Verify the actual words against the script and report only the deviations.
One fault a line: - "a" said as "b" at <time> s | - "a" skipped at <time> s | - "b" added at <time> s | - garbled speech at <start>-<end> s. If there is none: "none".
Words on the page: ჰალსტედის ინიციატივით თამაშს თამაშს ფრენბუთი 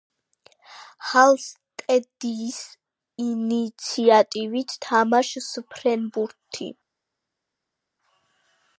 - "თამაშს" skipped at 5.5 s